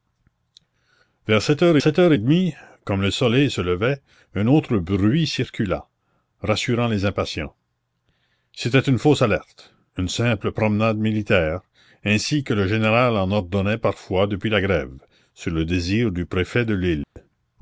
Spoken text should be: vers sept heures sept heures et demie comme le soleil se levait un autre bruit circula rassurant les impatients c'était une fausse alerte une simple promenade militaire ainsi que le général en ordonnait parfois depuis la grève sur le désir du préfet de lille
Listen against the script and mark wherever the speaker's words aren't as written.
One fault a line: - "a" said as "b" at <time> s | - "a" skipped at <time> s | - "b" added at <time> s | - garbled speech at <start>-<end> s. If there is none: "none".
none